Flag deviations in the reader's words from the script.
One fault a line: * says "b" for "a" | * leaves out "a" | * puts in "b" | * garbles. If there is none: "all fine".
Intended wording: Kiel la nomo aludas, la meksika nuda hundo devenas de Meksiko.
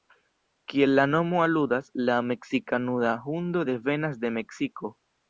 all fine